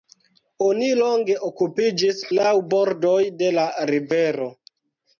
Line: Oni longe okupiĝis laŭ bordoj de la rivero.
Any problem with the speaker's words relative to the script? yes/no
no